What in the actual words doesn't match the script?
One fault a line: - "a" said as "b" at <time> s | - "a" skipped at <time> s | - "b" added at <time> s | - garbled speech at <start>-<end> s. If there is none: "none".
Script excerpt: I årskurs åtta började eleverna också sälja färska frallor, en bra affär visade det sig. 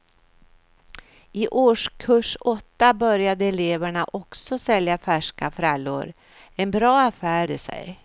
- "visade" skipped at 7.5 s